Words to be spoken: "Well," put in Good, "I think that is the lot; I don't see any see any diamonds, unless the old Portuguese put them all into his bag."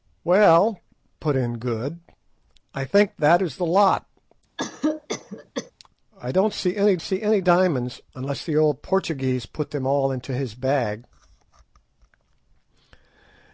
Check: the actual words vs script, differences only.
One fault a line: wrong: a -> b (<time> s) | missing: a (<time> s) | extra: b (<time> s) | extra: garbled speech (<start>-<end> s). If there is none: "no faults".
no faults